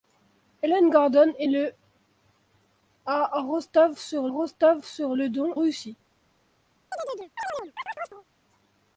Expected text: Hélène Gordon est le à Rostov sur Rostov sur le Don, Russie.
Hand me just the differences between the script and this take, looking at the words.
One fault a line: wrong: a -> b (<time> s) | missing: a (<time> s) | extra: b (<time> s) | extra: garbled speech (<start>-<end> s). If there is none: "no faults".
no faults